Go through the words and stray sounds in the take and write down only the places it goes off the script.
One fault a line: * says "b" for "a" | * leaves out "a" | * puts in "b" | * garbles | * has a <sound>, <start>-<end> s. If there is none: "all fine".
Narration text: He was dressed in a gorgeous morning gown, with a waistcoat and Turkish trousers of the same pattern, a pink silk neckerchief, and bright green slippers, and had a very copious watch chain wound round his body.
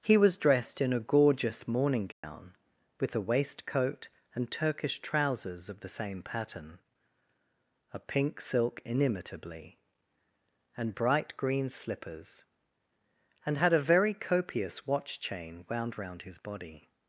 * has a dropout, 2.1-2.2 s
* says "inimitably" for "neckerchief"